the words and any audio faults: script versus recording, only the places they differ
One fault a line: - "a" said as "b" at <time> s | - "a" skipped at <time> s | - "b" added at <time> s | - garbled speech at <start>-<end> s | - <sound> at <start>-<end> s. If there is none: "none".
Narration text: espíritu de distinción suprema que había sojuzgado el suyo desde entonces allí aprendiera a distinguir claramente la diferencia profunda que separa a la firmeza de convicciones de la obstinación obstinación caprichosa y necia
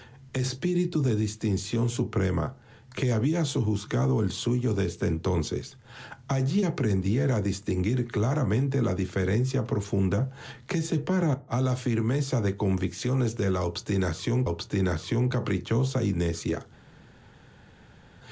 none